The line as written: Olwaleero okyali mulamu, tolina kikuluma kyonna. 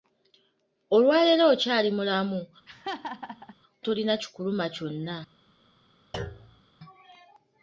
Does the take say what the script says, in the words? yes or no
yes